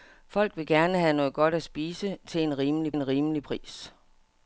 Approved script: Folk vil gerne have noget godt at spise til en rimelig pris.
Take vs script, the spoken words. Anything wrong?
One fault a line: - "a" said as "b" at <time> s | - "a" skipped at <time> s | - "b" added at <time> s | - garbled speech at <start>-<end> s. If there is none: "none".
- "en rimelig" added at 2.9 s